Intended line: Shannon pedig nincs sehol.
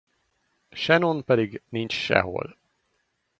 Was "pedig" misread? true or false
false